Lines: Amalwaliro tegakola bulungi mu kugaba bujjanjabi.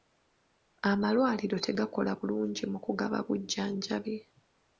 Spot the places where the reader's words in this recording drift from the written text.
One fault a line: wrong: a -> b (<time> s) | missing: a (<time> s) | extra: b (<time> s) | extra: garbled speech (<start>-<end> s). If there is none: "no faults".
no faults